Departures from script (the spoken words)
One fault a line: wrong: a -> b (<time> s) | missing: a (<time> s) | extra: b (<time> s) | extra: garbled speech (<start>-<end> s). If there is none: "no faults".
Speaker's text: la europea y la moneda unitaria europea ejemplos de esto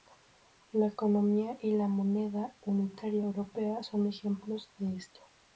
wrong: europea -> economía (0.9 s)
extra: son (3.8 s)